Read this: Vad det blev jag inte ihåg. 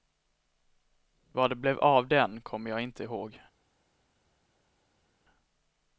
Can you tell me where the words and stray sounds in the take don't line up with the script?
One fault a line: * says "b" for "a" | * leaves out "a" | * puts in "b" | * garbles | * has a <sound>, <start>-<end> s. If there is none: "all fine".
* puts in "av den kommer"